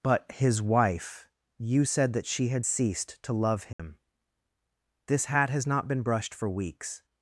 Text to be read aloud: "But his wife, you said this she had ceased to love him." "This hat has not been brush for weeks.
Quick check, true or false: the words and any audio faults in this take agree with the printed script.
false